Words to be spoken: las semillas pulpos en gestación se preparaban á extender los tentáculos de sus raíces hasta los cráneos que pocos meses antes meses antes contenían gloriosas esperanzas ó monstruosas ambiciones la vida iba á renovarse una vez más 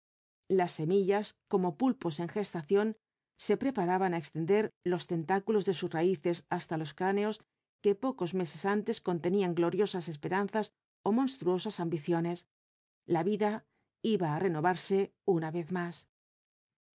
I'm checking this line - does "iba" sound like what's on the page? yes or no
yes